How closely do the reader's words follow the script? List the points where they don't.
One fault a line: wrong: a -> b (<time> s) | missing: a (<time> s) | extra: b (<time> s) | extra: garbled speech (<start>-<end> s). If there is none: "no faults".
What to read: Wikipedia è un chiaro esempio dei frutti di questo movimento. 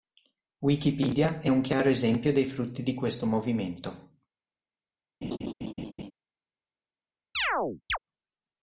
no faults